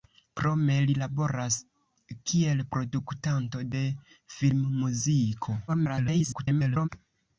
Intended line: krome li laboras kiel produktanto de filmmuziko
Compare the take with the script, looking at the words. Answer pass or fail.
fail